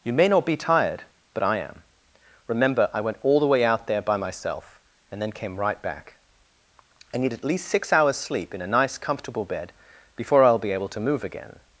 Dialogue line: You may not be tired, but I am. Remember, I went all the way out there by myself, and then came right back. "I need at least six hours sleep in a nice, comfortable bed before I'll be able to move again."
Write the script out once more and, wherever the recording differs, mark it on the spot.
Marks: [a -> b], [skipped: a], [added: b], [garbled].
You may not be tired, but I am. Remember, I went all the way out there by myself, and then came right back. "I need at least six hours sleep in a nice, comfortable bed before I'll be able to move again."